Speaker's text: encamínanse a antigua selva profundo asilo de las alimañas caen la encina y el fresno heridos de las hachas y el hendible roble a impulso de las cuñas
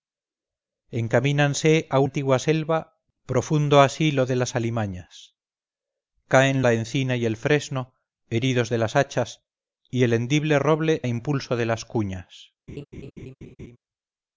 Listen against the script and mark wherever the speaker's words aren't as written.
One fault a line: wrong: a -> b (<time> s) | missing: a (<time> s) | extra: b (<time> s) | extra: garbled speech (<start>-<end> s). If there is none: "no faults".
no faults